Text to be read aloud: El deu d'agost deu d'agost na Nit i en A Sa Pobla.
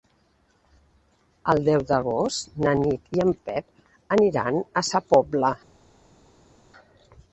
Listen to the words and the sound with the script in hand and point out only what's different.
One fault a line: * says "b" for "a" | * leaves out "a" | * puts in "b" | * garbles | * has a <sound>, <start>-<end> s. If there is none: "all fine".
* leaves out "deu d'agost"
* puts in "Pep aniran"